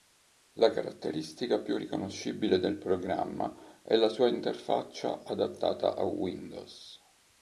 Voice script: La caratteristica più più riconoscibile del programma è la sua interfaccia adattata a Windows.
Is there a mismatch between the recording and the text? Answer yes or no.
yes